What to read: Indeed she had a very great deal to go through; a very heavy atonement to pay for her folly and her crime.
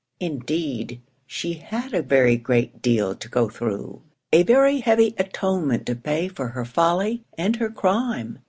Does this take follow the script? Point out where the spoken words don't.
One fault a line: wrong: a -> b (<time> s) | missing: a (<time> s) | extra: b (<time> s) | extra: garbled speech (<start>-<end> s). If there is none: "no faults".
no faults